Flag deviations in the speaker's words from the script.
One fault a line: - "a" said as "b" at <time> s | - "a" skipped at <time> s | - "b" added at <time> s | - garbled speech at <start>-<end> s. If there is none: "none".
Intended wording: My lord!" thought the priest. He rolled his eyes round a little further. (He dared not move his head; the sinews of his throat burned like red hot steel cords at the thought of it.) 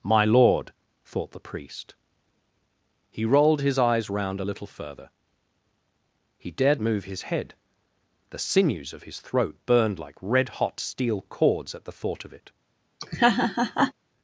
- "not" skipped at 6.8 s